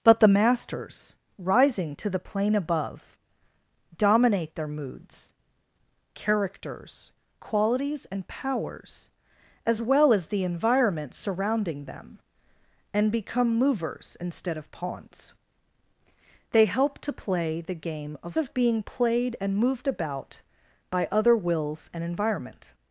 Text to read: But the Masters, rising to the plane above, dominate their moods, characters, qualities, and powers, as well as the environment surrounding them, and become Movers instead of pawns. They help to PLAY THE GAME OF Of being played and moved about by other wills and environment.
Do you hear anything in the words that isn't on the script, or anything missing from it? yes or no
no